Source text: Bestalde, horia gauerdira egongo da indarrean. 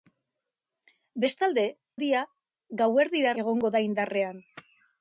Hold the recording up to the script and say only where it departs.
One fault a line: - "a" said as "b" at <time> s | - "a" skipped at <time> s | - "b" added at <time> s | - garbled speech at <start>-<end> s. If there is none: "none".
none